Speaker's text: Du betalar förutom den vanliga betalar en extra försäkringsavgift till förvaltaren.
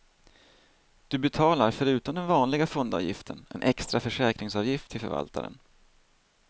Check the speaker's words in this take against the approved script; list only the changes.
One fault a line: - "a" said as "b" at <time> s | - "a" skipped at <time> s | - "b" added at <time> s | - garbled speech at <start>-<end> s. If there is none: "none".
- "betalar" said as "fondavgiften" at 2.7 s